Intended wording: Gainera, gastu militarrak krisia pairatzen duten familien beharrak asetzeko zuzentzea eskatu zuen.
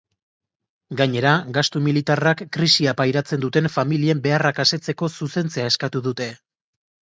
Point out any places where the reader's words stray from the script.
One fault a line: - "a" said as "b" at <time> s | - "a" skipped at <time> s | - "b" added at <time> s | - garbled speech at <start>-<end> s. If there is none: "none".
- "zuen" said as "dute" at 6.1 s